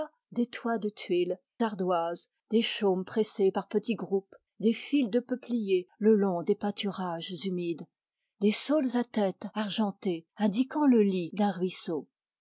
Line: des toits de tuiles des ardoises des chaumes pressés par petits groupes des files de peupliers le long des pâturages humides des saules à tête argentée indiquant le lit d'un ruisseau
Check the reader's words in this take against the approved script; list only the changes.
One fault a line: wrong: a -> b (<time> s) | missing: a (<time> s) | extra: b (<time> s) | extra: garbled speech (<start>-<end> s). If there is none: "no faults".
missing: des (1.4 s)